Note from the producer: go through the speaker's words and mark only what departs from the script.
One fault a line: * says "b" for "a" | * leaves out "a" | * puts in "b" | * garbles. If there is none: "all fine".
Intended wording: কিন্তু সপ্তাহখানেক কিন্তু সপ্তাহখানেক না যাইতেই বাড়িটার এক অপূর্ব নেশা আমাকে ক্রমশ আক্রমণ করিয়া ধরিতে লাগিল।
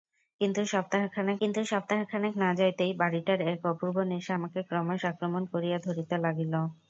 all fine